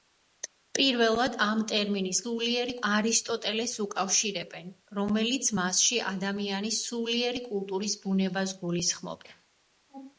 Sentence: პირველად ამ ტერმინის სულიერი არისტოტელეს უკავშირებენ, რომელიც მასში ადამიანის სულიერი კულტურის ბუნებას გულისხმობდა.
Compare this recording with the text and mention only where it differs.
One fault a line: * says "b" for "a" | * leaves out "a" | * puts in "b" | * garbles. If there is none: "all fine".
all fine